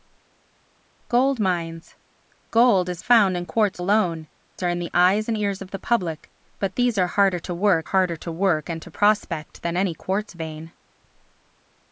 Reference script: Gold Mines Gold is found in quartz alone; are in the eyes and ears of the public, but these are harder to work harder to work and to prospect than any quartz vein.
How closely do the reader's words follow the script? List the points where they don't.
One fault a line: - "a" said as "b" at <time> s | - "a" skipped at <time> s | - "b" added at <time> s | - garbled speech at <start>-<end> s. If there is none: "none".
none